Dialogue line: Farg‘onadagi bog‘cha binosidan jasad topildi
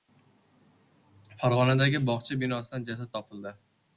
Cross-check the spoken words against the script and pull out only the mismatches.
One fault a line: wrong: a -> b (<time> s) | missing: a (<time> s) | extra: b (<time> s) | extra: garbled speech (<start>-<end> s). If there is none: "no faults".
no faults